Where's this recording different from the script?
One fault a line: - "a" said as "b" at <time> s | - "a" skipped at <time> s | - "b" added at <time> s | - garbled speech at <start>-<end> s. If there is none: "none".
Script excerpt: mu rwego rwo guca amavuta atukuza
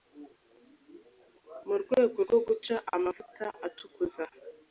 none